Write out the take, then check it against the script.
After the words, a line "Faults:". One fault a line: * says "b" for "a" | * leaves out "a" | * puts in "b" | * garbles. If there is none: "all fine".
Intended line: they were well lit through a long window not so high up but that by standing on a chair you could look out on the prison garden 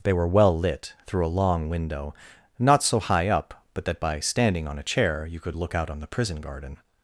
they were well lit through a long window not so high up but that by standing on a chair you could look out on the prison garden
Faults:
all fine